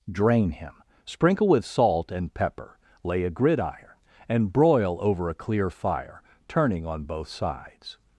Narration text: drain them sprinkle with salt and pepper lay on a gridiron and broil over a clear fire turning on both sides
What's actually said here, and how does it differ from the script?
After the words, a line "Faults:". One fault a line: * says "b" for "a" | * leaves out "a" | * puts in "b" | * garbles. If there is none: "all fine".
drain him sprinkle with salt and pepper lay a gridiron and broil over a clear fire turning on both sides
Faults:
* says "him" for "them"
* leaves out "on"